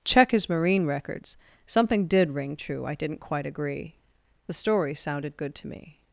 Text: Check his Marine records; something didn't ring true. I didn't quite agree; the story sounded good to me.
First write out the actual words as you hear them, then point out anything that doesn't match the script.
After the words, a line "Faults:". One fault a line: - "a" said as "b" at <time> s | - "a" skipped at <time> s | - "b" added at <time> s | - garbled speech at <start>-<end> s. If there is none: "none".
Check his Marine records; something did ring true. I didn't quite agree; the story sounded good to me.
Faults:
- "didn't" said as "did" at 2.1 s